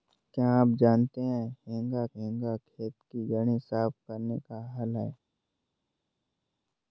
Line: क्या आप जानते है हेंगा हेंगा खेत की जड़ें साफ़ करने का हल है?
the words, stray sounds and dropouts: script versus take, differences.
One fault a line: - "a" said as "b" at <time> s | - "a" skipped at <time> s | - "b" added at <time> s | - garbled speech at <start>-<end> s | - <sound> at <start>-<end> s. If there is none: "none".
none